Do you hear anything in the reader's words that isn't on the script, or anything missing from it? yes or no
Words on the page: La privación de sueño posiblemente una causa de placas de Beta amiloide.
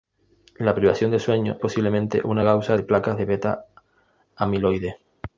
no